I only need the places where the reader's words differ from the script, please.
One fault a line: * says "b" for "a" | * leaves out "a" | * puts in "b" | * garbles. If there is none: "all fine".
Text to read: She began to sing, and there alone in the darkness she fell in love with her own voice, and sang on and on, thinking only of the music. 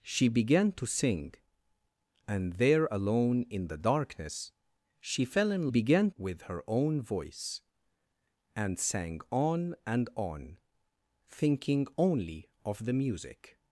* says "began" for "love"